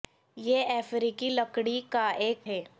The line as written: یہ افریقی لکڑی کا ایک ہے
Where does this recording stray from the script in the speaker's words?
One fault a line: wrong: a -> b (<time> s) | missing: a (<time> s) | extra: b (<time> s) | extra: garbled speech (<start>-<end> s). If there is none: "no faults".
no faults